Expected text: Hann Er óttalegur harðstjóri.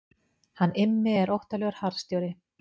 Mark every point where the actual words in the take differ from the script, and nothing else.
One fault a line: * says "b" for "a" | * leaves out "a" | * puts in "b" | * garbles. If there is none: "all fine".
* puts in "Immi"